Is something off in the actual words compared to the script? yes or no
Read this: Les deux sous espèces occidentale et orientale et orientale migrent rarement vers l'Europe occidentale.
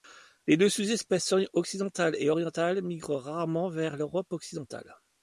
yes